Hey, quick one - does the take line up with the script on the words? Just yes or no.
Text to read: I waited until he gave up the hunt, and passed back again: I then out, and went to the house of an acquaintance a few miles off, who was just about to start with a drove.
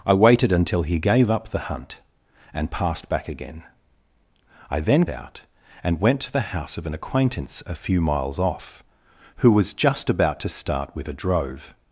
yes